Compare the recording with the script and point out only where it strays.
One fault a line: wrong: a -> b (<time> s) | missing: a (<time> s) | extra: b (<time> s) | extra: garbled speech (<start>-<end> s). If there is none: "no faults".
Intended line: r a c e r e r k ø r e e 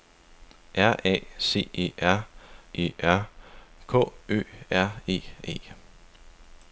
no faults